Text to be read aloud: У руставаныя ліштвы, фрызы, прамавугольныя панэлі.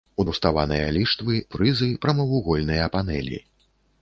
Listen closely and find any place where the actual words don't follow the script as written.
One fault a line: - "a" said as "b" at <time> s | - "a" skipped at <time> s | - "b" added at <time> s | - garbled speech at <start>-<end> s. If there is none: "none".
none